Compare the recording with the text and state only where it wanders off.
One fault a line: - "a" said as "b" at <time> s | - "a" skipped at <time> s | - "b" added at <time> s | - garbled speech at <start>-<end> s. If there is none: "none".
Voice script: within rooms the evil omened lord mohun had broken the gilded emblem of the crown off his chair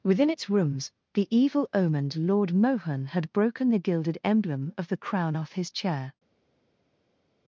- "its" added at 0.3 s